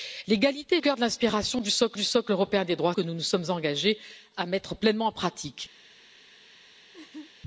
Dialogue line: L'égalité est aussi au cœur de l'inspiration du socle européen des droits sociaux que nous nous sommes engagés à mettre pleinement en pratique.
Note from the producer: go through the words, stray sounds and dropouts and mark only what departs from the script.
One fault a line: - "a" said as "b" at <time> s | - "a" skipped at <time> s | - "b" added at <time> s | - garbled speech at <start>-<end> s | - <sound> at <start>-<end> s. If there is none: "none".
- "est aussi au" skipped at 0.8 s
- "du socle" added at 1.9 s
- "sociaux" skipped at 2.9 s
- laugh at 6.9-7.3 s